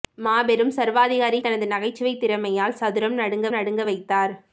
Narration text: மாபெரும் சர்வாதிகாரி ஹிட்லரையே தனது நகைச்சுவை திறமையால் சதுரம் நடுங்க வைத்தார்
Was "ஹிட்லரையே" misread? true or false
true